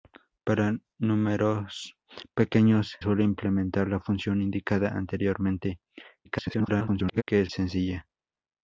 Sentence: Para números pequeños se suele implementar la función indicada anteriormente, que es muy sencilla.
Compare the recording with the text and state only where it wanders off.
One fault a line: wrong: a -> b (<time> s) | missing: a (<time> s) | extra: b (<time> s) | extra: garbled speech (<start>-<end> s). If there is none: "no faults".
missing: se (3.0 s)
extra: garbled speech (6.2-7.2 s)
missing: muy (7.5 s)